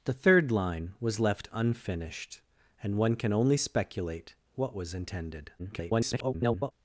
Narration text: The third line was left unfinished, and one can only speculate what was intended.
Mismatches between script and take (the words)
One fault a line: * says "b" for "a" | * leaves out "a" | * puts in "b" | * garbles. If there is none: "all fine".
* garbles